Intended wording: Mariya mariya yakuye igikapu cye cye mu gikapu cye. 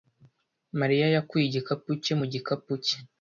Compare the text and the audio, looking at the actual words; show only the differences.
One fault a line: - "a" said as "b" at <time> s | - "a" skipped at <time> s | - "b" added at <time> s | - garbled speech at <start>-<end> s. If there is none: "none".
- "mariya" skipped at 1.1 s
- "cye" skipped at 2.1 s